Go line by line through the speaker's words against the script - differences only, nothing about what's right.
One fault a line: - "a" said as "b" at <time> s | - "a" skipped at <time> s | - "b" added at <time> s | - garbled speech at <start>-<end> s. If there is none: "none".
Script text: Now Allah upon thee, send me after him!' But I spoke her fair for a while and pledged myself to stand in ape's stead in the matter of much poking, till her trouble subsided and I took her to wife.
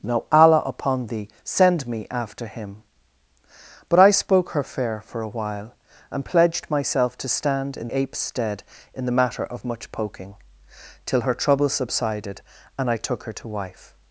none